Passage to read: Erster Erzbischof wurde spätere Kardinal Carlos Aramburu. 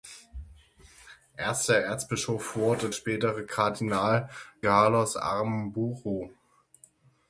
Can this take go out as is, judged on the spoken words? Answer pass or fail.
pass